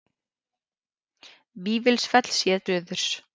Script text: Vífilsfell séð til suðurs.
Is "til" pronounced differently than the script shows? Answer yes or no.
yes